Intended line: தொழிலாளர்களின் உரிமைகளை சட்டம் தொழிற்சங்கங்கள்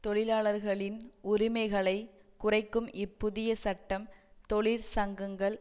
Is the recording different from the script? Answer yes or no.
yes